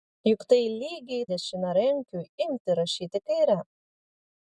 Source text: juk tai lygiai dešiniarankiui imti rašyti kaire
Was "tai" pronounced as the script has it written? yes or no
yes